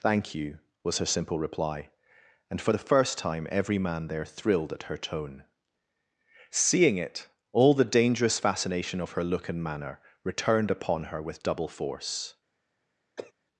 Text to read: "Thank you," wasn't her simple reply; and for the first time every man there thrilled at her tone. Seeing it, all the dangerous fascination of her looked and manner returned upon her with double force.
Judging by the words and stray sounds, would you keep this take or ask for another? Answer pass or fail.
fail